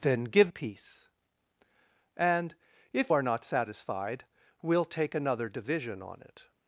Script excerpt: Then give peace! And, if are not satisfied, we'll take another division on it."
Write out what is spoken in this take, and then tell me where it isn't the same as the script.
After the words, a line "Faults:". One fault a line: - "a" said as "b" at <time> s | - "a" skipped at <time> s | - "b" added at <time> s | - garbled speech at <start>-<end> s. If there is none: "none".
Then give peace! And, if are not satisfied, we'll take another division on it."
Faults:
none